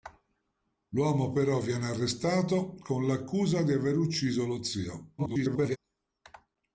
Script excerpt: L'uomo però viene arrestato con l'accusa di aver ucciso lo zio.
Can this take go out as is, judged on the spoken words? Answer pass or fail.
fail